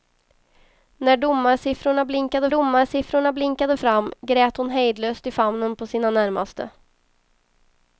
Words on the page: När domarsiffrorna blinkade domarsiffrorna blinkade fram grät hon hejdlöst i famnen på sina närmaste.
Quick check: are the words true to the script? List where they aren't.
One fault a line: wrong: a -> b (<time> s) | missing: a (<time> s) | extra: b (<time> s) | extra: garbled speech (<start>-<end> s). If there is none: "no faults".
no faults